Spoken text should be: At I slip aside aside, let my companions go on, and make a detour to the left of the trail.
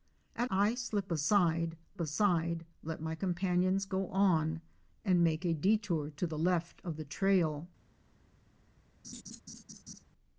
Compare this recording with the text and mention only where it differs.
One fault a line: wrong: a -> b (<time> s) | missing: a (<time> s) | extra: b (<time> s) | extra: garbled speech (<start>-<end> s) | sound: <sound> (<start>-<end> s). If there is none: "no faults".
sound: laugh (9.0-10.0 s)